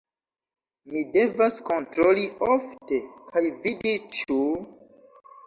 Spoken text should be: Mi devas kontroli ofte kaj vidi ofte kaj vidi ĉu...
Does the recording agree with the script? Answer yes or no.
no